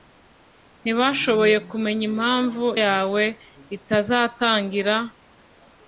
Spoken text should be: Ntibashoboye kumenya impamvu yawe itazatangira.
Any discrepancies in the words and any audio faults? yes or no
no